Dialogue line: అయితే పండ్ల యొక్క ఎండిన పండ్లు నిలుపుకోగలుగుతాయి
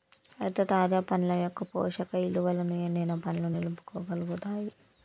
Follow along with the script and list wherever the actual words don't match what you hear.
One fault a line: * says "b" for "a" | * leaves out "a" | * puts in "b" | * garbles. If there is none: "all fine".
* puts in "తాజా"
* puts in "పోషక ఇలువలను"